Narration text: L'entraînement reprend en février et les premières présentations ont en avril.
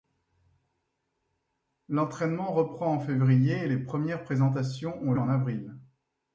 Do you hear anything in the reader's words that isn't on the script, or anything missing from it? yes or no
no